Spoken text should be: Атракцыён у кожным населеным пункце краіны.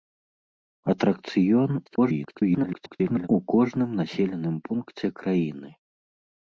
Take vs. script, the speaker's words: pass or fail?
fail